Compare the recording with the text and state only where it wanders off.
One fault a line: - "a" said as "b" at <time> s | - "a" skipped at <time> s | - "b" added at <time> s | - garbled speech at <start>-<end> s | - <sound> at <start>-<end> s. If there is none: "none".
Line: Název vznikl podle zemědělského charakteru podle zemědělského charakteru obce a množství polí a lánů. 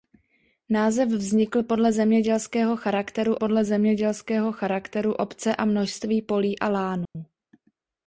- dropout at 7.1-7.2 s